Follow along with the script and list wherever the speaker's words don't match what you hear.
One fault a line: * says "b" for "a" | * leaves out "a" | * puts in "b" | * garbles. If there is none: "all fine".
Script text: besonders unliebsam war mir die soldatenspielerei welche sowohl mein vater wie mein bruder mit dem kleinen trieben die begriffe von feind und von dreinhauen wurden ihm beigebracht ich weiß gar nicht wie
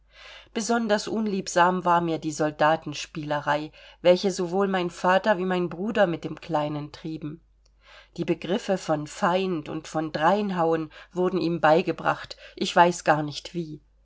all fine